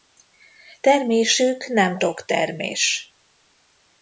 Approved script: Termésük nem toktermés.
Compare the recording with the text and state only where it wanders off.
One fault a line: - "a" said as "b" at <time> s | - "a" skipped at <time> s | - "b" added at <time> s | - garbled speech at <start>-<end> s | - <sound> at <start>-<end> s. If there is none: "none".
none